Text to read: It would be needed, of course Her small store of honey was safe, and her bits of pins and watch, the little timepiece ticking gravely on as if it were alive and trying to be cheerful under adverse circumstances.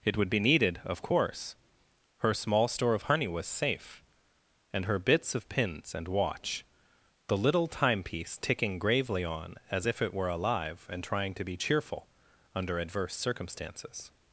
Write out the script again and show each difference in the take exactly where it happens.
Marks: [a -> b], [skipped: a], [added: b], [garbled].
It would be needed, of course Her small store of honey was safe, and her bits of pins and watch, the little timepiece ticking gravely on as if it were alive and trying to be cheerful under adverse circumstances.